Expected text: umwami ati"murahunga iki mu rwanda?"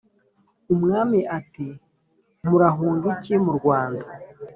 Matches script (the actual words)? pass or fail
pass